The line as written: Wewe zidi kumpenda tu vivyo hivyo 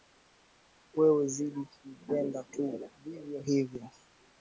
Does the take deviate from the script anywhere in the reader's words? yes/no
no